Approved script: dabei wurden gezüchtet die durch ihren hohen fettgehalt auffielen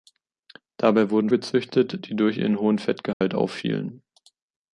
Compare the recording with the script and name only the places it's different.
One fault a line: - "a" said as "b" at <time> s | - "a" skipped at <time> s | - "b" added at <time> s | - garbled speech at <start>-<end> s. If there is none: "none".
none